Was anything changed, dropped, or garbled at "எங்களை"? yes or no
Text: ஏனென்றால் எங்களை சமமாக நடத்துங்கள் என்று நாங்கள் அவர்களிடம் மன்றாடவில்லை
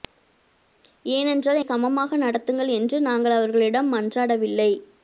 yes